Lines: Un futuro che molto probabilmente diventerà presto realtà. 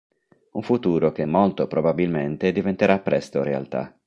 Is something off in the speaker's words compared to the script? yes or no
no